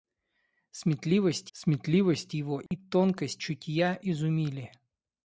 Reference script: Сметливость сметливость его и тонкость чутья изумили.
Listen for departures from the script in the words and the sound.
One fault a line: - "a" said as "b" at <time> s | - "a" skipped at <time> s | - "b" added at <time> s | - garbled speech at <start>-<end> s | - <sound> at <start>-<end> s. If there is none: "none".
- dropout at 2.7-2.7 s